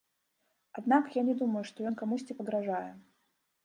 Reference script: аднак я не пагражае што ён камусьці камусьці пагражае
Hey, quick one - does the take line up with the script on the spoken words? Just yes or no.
no